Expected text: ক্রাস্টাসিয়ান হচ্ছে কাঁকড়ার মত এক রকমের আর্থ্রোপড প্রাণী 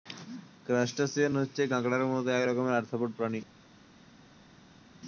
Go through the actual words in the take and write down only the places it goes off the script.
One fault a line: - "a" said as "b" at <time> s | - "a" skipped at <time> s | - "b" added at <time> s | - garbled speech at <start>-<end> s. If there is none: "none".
none